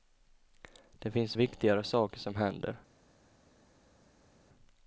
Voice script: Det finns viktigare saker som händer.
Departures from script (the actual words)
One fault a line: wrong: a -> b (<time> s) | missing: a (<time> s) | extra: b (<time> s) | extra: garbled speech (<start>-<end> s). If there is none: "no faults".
no faults